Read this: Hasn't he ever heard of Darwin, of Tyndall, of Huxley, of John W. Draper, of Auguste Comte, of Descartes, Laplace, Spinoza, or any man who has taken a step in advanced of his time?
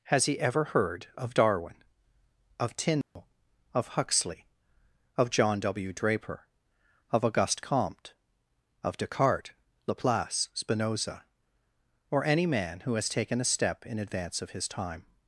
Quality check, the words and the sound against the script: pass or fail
fail